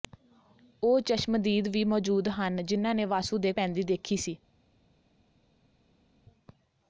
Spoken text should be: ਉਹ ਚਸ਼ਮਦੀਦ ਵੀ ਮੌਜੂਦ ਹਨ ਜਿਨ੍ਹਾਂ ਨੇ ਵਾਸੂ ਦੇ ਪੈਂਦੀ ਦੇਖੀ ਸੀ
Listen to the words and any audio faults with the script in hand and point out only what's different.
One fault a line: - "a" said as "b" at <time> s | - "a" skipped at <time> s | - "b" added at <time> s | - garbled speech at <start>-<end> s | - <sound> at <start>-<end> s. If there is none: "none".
none